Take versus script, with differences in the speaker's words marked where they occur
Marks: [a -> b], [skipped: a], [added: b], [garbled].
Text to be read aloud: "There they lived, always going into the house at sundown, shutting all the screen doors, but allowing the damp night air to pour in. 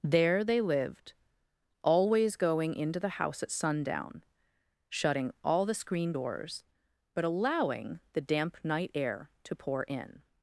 "There they lived, always going into the house at sundown, shutting all the screen doors, but allowing the damp night air to pour in.